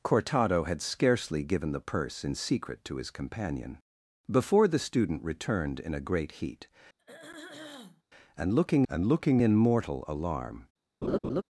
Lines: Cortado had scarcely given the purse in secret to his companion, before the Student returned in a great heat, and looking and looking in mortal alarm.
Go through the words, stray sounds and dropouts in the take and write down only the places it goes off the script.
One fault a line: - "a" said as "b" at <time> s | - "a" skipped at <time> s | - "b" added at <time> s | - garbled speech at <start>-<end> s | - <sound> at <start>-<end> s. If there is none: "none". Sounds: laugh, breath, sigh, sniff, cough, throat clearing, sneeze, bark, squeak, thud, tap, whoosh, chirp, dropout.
- throat clearing at 7.0-8.0 s
- laugh at 11.0-11.4 s